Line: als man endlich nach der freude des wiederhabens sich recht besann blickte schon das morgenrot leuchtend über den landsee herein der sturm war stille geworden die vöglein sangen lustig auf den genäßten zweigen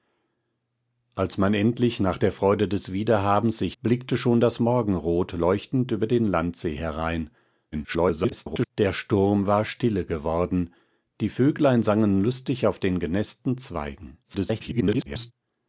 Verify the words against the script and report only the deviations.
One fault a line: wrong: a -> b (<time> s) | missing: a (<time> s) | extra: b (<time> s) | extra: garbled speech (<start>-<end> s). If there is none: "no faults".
missing: recht besann (3.8 s)
extra: garbled speech (7.7-8.7 s)
extra: garbled speech (14.2-15.3 s)